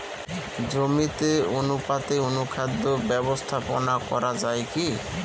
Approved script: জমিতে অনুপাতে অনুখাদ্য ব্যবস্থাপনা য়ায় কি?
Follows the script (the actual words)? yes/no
no